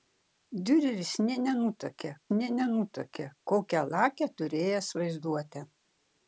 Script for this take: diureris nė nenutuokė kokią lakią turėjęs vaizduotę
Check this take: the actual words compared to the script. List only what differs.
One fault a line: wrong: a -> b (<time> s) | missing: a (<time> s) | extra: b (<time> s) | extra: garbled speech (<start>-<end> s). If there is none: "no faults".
extra: nė nenutuokė (2.4 s)